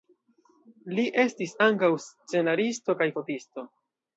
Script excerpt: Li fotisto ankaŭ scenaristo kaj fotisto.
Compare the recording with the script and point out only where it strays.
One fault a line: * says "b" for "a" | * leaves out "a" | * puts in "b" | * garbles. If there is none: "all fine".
* says "estis" for "fotisto"